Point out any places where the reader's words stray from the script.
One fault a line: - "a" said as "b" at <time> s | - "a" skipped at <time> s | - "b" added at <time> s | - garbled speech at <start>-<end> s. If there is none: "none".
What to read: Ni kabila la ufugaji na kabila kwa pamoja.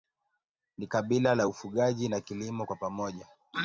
- "kabila" said as "kilimo" at 2.2 s